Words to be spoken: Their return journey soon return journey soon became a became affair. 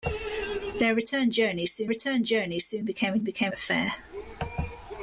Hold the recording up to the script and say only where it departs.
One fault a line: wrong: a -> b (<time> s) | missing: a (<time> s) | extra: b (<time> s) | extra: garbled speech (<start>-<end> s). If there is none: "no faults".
no faults